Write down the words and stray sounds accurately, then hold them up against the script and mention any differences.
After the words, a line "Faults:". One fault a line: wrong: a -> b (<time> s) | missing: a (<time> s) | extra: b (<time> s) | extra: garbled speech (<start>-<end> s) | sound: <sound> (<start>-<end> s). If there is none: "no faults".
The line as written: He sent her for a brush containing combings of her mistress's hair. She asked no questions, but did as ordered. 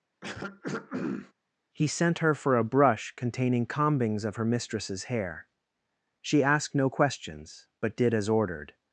He sent her for a brush containing combings of her mistress's hair. She asked no questions, but did as ordered.
Faults:
sound: throat clearing (0.2-1.3 s)